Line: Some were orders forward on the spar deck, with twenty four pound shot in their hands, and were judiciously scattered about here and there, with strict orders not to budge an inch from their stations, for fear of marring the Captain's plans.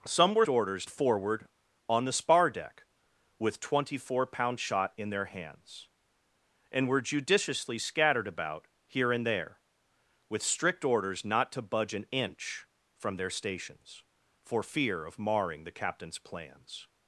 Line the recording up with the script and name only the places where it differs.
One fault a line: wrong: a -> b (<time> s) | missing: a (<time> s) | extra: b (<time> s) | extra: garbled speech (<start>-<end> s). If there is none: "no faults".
no faults